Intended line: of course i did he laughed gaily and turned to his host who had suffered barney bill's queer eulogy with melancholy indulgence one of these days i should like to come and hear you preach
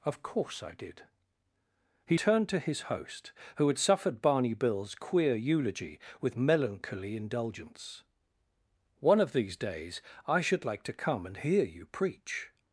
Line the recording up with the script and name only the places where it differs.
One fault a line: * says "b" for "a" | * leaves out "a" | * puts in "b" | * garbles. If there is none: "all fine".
* leaves out "laughed gaily and"